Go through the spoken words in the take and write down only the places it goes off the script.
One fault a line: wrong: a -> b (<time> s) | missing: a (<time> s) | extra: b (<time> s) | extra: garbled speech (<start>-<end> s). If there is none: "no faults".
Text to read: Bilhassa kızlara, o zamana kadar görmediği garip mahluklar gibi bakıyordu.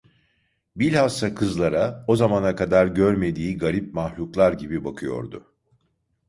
no faults